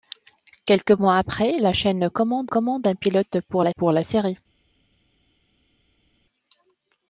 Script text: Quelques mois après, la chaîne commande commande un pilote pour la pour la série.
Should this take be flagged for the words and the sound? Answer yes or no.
no